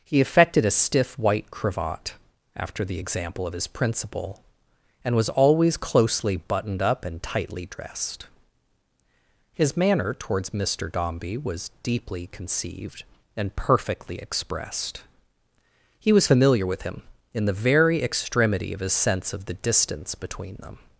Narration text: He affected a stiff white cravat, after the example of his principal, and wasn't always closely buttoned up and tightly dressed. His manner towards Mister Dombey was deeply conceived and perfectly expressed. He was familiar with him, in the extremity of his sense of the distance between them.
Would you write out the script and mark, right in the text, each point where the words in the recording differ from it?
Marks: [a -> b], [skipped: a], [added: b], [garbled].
He affected a stiff white cravat, after the example of his principal, and [wasn't -> was] always closely buttoned up and tightly dressed. His manner towards Mister Dombey was deeply conceived and perfectly expressed. He was familiar with him, in the [added: very] extremity of his sense of the distance between them.